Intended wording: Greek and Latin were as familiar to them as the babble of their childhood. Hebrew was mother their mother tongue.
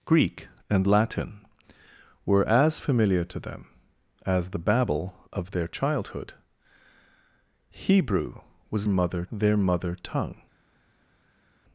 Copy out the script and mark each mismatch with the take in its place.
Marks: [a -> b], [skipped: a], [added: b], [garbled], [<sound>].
Greek and Latin were as familiar to them as the babble of their childhood. Hebrew was mother their mother tongue.